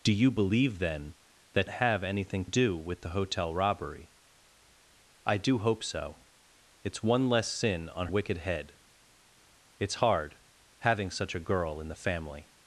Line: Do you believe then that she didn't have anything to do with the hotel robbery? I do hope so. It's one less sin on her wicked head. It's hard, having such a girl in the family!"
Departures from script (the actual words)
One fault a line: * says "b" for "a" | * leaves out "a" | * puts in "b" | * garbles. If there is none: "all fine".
* leaves out "she didn't"
* leaves out "to"
* leaves out "her"